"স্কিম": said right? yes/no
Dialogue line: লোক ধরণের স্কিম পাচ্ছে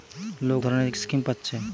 yes